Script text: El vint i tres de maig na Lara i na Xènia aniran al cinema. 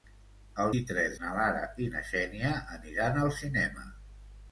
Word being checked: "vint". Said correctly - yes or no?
no